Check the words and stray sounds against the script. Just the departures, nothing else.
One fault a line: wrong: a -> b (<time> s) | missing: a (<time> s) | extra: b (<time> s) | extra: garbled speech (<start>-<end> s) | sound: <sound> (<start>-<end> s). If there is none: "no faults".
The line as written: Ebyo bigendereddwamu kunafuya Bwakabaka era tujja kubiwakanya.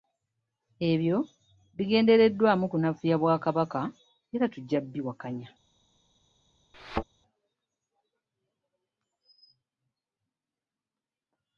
sound: thud (6.7-7.0 s)